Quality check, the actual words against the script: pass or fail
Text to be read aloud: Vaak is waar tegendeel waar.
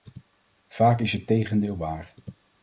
fail